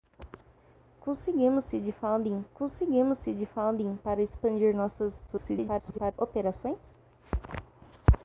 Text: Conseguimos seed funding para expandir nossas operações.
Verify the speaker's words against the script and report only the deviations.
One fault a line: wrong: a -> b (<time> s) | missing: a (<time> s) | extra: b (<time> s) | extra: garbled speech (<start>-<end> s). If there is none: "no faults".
extra: conseguimos seed funding (2.5 s)
extra: garbled speech (5.3-6.1 s)